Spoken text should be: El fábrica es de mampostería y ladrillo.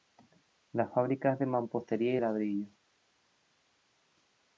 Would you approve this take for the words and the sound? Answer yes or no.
no